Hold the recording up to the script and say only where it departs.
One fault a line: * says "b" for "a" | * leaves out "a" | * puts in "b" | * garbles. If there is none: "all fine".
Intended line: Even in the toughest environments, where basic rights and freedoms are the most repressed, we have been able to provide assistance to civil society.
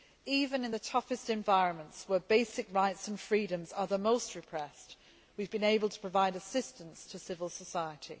all fine